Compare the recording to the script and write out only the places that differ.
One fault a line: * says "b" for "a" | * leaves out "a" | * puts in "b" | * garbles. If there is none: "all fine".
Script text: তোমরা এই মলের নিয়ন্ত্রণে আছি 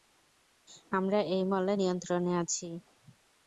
* says "আমরা" for "তোমরা"